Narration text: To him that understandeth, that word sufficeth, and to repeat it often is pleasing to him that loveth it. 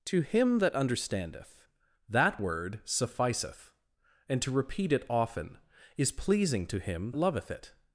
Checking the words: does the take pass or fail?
fail